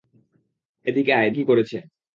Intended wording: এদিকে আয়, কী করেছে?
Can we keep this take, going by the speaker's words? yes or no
yes